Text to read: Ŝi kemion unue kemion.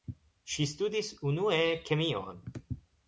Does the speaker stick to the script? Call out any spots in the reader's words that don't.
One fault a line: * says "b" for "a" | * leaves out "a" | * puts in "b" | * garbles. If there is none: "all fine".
* says "studis" for "kemion"